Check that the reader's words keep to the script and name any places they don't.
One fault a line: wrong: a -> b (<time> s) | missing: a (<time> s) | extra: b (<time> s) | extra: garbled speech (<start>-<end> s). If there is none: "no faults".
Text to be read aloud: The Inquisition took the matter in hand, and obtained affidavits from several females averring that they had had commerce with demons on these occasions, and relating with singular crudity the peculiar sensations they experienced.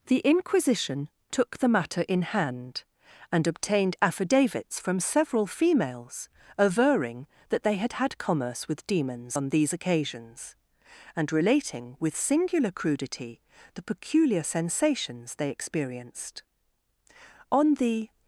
extra: On the (17.5 s)